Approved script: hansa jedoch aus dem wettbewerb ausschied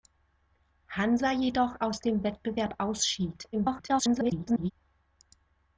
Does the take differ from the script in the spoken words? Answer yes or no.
yes